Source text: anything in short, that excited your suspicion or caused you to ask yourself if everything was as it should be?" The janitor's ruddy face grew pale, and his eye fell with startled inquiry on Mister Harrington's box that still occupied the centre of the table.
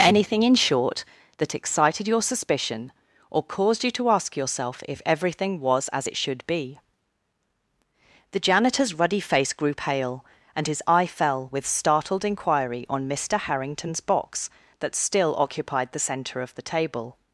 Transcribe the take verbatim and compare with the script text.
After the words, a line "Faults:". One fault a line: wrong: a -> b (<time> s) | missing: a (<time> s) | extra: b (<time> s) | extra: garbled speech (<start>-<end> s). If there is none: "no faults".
anything in short, that excited your suspicion or caused you to ask yourself if everything was as it should be?" The janitor's ruddy face grew pale, and his eye fell with startled inquiry on Mister Harrington's box that still occupied the centre of the table.
Faults:
no faults